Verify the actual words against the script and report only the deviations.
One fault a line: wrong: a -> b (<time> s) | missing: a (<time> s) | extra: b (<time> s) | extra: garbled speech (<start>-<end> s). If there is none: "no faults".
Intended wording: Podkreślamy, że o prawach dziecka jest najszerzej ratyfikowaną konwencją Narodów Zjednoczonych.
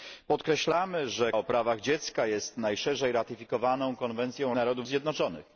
no faults